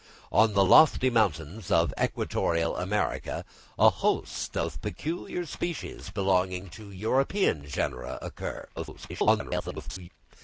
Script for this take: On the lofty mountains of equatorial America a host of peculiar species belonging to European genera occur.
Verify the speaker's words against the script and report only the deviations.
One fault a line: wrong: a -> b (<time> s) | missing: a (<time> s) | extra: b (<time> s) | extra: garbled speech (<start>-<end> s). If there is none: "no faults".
extra: garbled speech (8.8-10.1 s)